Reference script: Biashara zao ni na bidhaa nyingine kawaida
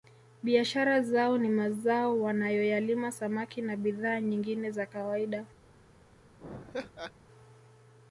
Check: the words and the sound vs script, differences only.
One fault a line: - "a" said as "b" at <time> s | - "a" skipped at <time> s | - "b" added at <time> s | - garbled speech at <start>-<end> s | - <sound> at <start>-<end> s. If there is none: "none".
- "mazao wanayoyalima samaki" added at 1.5 s
- "za" added at 4.7 s
- laugh at 6.4-7.1 s